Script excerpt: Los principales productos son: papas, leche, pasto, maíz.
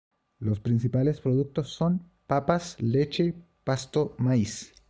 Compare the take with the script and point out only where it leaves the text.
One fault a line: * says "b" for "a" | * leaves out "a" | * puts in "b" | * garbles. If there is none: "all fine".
all fine